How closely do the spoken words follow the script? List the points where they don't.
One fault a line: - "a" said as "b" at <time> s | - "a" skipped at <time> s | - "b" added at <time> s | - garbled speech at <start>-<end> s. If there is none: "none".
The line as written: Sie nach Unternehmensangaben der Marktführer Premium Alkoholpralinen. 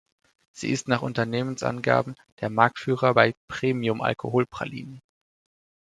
- "ist" added at 0.7 s
- "bei" added at 3.1 s